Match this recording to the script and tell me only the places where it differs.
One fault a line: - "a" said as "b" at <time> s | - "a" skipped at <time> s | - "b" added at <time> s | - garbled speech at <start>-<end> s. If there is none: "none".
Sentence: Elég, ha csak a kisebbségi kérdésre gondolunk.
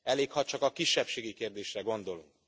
none